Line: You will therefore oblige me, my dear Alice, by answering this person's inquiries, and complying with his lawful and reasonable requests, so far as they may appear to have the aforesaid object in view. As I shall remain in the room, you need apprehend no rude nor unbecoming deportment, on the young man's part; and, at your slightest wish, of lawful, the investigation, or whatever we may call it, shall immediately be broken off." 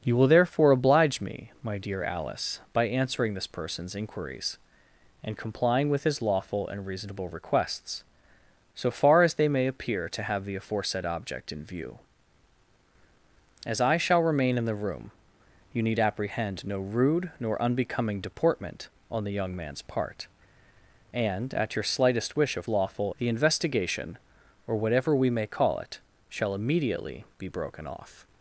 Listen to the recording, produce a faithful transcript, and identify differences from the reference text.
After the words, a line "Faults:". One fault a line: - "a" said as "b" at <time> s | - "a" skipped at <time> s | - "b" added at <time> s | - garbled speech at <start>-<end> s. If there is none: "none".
You will therefore oblige me, my dear Alice, by answering this person's inquiries, and complying with his lawful and reasonable requests, so far as they may appear to have the aforesaid object in view. As I shall remain in the room, you need apprehend no rude nor unbecoming deportment, on the young man's part; and, at your slightest wish, of lawful, the investigation, or whatever we may call it, shall immediately be broken off."
Faults:
none